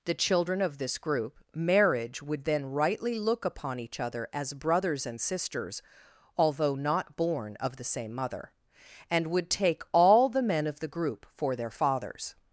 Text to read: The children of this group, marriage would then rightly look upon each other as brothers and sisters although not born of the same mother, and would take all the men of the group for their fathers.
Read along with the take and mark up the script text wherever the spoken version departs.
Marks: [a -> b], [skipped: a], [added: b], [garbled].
The children of this group, marriage would then rightly look upon each other as brothers and sisters although not born of the same mother, and would take all the men of the group for their fathers.